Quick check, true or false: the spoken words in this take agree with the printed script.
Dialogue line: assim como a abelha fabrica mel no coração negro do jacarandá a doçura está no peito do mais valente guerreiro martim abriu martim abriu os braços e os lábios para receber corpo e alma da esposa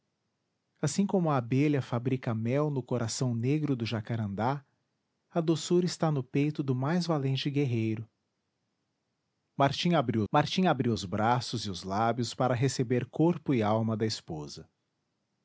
true